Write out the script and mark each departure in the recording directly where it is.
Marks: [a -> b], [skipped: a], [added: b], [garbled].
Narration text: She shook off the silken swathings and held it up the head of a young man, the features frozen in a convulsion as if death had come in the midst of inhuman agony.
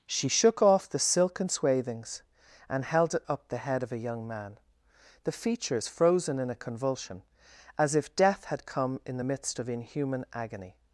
She shook off the silken swathings and held it up the head of a young man, the features frozen in a convulsion as if death had come in the midst of inhuman agony.